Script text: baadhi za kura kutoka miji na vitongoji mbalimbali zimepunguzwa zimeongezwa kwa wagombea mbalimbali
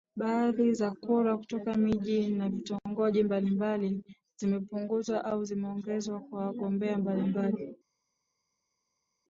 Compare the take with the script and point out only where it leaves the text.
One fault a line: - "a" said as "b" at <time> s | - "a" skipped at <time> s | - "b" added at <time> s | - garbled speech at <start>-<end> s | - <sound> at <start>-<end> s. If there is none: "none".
- "au" added at 5.2 s